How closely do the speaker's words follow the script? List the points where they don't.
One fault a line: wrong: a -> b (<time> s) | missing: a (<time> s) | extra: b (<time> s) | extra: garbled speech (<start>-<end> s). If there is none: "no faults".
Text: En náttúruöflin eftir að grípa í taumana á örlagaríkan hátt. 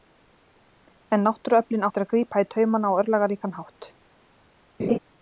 no faults